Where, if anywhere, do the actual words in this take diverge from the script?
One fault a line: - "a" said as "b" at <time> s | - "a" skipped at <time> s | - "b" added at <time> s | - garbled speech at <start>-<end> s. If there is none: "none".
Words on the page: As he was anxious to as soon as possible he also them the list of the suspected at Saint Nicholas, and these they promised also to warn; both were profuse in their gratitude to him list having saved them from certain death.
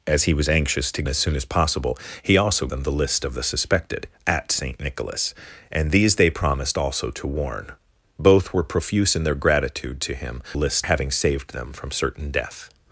none